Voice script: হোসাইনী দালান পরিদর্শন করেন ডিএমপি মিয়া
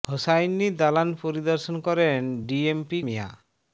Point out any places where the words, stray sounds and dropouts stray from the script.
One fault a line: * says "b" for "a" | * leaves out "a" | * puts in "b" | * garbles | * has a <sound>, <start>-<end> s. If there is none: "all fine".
all fine